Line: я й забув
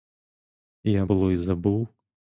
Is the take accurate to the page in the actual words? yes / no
no